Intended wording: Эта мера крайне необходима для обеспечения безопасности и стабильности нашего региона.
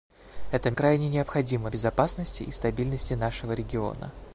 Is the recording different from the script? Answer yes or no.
yes